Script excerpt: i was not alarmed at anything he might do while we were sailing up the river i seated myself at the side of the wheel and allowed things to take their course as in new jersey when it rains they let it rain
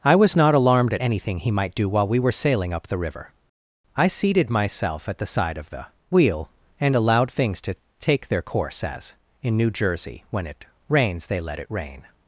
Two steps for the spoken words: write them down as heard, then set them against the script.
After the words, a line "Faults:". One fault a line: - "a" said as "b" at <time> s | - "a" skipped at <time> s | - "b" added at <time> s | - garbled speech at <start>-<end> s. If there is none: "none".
i was not alarmed at anything he might do while we were sailing up the river i seated myself at the side of the wheel and allowed things to take their course as in new jersey when it rains they let it rain
Faults:
none